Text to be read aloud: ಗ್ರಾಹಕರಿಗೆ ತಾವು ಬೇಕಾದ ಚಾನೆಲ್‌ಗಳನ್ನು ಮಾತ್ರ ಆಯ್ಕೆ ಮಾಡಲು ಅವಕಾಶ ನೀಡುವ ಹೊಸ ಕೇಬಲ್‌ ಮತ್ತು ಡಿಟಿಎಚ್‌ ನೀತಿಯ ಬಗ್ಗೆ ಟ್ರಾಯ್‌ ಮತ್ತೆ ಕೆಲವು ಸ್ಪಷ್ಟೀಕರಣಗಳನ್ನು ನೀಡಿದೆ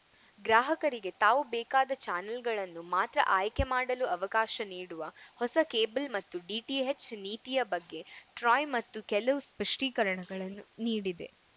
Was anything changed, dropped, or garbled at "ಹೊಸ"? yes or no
no